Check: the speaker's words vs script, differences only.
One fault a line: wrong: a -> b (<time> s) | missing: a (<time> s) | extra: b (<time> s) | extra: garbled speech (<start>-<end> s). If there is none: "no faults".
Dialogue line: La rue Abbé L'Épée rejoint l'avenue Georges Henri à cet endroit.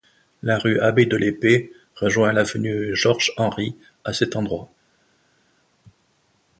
extra: de (1.0 s)